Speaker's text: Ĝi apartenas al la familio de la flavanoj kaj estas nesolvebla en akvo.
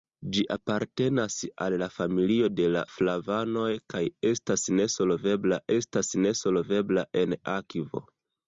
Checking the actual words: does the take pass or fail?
fail